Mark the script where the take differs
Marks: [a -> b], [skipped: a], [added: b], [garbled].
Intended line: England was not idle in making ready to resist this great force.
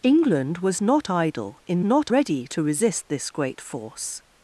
England was not idle in [making -> not] ready to resist this great force.